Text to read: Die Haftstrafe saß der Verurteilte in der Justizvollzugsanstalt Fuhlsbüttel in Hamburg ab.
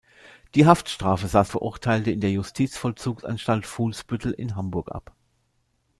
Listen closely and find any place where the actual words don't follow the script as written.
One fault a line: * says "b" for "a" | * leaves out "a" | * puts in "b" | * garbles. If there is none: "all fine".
* leaves out "der"